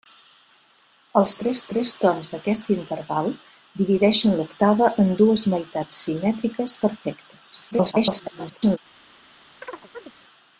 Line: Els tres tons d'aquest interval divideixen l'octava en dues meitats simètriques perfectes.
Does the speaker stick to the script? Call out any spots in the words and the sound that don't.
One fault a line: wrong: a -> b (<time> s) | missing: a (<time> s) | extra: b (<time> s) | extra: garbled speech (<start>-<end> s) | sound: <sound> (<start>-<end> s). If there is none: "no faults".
extra: tres (1.7 s)
extra: garbled speech (7.7-8.8 s)
sound: chirp (9.6-10.1 s)